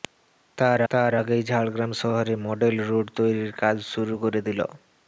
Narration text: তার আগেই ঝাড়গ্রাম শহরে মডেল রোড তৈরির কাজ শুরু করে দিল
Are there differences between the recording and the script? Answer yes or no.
yes